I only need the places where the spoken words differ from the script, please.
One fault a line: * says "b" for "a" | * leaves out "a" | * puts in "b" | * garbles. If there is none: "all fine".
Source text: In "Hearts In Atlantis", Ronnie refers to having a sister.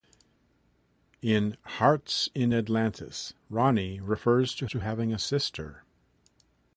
* puts in "to"